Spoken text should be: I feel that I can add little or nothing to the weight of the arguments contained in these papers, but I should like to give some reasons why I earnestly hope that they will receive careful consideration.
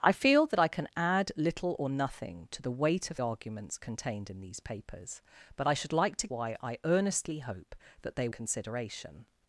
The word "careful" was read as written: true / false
false